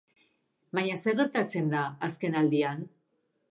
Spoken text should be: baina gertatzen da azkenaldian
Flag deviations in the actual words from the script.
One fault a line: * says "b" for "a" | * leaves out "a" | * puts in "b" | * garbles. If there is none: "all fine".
* puts in "zer"